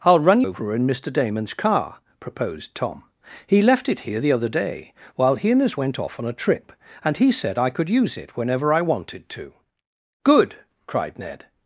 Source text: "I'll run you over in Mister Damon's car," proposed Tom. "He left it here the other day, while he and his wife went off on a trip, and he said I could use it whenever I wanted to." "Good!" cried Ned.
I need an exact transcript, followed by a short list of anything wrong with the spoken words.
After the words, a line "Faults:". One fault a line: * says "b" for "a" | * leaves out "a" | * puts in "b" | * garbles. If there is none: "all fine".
"I'll run over in Mister Damon's car," proposed Tom. "He left it here the other day, while he and his went off on a trip, and he said I could use it whenever I wanted to." "Good!" cried Ned.
Faults:
* leaves out "you"
* leaves out "wife"